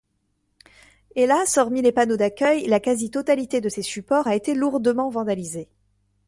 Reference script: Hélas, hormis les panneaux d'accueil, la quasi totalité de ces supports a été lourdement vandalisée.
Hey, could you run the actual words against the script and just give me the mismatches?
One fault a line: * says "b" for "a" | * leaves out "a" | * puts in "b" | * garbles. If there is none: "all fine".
all fine